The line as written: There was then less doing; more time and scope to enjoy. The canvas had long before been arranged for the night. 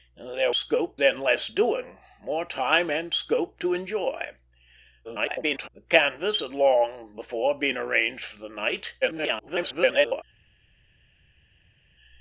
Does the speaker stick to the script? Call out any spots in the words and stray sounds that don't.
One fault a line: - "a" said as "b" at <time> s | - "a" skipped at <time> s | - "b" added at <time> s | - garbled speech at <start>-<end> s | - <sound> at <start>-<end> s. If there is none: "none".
- "was" said as "scope" at 0.5 s
- garbled speech at 5.0-5.7 s
- garbled speech at 9.0-10.2 s